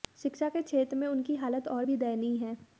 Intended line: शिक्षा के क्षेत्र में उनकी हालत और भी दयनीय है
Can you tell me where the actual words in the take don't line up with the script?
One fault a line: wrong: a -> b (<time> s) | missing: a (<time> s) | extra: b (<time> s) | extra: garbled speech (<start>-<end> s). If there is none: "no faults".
no faults